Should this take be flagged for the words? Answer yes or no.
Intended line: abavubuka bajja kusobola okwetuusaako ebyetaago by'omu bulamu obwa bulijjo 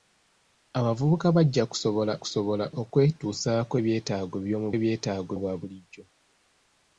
yes